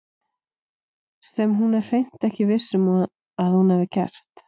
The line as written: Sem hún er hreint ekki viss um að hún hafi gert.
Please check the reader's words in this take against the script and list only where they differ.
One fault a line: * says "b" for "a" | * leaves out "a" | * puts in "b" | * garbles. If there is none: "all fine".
all fine